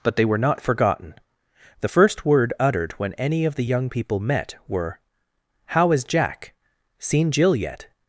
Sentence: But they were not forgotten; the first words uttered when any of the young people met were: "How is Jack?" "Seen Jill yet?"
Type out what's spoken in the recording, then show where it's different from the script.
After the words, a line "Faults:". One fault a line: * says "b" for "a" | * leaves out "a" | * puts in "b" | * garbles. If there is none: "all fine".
But they were not forgotten; the first word uttered when any of the young people met were: "How is Jack?" "Seen Jill yet?"
Faults:
* says "word" for "words"